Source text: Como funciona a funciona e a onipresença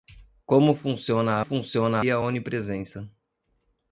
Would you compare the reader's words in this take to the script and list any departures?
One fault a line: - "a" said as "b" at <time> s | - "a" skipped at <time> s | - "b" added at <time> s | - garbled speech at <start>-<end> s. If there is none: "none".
none